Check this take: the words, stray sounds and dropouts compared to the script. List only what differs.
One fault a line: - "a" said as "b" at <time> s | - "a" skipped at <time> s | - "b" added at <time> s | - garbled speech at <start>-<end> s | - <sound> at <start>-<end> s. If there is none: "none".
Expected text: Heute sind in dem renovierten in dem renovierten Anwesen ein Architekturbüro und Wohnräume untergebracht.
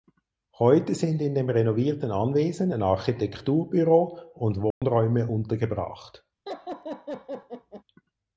- "in dem renovierten" skipped at 2.1 s
- dropout at 4.7-4.8 s
- laugh at 6.5-7.8 s